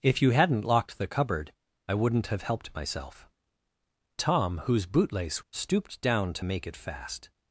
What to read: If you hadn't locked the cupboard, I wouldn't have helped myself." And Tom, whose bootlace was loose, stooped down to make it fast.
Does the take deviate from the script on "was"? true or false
true